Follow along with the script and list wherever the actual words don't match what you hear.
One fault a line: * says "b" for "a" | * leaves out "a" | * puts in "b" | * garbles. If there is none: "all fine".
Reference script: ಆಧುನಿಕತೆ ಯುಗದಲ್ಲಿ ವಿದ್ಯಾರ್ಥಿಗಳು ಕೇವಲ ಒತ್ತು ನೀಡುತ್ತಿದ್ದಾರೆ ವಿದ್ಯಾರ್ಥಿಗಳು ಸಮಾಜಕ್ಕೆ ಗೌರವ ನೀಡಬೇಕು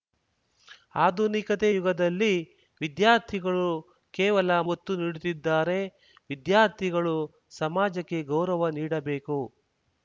all fine